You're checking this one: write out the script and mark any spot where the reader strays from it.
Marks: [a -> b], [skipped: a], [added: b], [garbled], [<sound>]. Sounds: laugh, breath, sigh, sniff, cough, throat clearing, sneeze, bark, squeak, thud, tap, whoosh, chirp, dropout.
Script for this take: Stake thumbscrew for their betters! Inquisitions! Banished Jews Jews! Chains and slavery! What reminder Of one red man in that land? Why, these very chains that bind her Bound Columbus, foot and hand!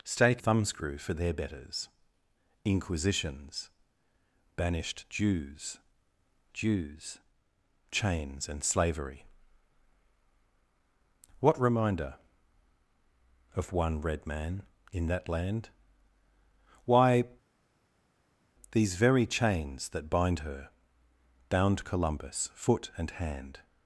Stake thumbscrew for their betters! Inquisitions! Banished Jews Jews! Chains and slavery! What reminder Of one red man in that land? Why, these very chains that bind her Bound Columbus, foot and hand!